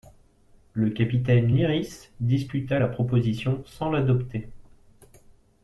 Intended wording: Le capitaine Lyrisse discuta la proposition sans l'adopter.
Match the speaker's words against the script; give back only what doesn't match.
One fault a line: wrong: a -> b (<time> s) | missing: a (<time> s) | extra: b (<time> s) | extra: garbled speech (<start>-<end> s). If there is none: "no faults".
no faults